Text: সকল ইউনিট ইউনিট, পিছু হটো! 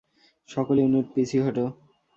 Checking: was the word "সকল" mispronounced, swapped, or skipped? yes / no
no